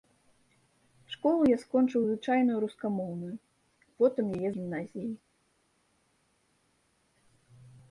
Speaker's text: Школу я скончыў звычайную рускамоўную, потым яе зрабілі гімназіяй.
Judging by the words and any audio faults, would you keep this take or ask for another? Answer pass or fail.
fail